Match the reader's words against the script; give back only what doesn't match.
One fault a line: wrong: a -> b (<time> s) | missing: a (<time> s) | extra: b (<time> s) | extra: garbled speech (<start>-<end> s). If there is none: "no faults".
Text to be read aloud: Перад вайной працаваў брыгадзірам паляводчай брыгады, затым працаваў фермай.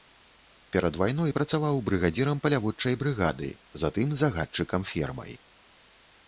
wrong: працаваў -> загадчыкам (4.2 s)